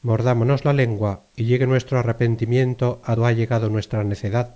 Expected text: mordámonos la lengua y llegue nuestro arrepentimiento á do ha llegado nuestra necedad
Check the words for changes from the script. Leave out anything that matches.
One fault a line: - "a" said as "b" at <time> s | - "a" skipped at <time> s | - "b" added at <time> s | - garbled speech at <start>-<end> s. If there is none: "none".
none